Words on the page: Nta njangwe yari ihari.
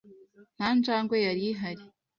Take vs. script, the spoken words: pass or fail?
pass